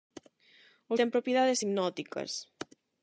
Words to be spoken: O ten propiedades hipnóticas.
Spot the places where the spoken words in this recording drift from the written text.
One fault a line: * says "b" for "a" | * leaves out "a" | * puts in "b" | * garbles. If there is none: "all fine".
all fine